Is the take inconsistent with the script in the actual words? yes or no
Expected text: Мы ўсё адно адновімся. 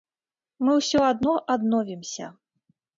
no